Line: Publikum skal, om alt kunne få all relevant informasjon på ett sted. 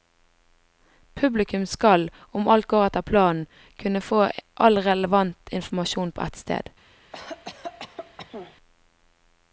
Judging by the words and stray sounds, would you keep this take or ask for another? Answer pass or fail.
fail